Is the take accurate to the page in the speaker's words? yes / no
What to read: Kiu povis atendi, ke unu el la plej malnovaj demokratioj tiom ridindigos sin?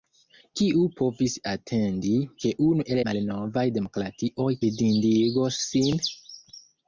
no